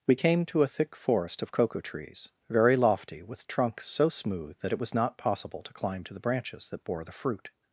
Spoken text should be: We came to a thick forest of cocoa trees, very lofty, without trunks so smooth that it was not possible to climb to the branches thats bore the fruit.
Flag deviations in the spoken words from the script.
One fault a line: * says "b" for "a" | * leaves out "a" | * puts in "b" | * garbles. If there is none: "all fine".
* says "with" for "without"
* says "that" for "thats"